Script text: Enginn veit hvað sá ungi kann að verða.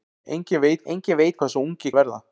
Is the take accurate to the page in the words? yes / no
no